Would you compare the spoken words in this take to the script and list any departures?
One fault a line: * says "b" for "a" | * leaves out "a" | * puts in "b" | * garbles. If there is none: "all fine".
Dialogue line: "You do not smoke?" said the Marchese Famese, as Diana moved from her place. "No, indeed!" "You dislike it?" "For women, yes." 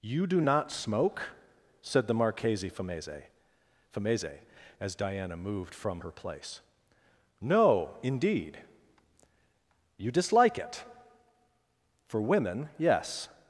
* puts in "Famese"